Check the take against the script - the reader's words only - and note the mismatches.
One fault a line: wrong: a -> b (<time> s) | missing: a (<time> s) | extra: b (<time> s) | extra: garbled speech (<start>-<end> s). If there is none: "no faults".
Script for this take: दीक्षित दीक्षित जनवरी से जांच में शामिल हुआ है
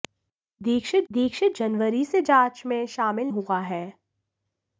no faults